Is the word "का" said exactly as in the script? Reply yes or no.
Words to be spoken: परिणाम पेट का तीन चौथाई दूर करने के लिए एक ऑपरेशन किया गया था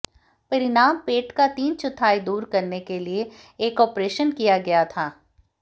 yes